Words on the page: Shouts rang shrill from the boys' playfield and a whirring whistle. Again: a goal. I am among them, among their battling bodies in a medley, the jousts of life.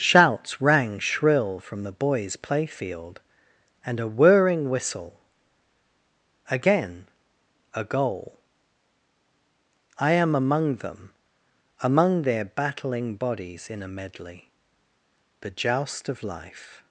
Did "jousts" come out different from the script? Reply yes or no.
yes